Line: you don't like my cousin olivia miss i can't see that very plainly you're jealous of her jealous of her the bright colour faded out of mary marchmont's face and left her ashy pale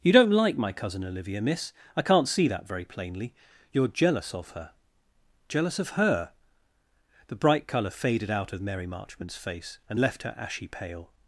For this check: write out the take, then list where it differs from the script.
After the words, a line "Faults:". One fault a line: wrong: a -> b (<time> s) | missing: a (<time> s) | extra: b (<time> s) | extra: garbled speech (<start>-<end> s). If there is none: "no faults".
you don't like my cousin olivia miss i can't see that very plainly you're jealous of her jealous of her the bright colour faded out of mary marchmont's face and left her ashy pale
Faults:
no faults